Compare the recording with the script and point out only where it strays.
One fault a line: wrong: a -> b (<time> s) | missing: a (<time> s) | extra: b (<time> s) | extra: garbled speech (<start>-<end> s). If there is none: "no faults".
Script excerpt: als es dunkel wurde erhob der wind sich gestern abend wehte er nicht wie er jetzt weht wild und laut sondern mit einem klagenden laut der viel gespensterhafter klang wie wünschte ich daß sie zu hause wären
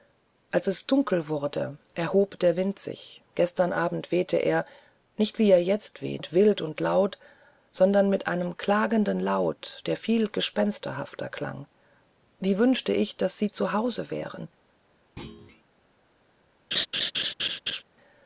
no faults